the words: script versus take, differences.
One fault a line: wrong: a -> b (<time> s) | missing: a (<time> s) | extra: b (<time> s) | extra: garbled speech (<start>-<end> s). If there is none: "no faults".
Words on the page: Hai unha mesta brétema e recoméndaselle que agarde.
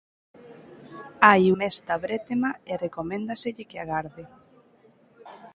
missing: unha (1.4 s)